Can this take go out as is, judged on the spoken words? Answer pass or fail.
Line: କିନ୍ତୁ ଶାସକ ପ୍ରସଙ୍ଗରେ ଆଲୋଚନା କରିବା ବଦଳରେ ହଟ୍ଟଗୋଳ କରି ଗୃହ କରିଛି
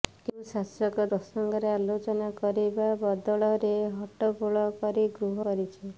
pass